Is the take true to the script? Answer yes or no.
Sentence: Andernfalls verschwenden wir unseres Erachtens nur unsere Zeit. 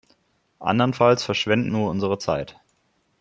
no